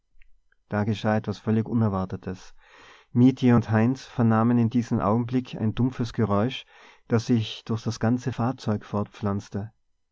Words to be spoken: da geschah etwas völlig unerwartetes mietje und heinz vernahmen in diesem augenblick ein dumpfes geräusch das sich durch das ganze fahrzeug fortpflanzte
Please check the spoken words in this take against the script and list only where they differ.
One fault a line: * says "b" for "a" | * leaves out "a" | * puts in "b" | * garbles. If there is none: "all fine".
all fine